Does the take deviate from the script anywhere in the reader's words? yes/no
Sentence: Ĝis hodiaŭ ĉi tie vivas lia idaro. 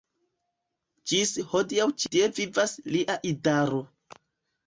no